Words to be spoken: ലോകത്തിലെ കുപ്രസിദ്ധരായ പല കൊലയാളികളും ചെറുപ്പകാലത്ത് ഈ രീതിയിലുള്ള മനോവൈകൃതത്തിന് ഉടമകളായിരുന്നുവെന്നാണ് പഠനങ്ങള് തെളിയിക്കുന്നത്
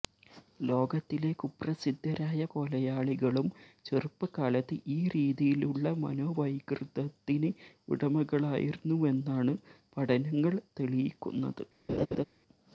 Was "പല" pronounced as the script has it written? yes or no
no